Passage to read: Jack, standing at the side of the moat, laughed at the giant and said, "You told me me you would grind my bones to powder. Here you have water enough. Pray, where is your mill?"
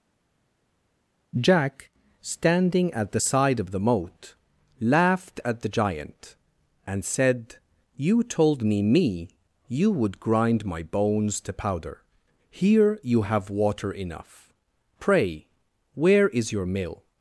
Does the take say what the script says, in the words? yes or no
yes